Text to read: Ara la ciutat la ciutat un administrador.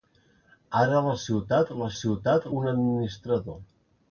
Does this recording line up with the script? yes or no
yes